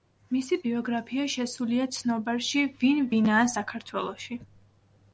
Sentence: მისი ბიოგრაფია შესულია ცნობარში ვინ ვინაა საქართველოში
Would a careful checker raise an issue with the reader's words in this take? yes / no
no